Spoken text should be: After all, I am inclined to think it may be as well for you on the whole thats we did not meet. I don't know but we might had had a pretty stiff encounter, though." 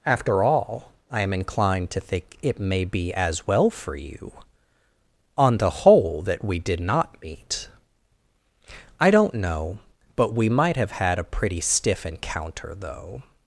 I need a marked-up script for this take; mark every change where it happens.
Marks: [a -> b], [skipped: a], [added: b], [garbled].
After all, I am inclined to think it may be as well for you on the whole [thats -> that] we did not meet. I don't know but we might [had -> have] had a pretty stiff encounter, though."